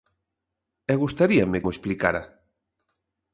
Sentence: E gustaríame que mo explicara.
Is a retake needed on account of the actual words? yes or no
yes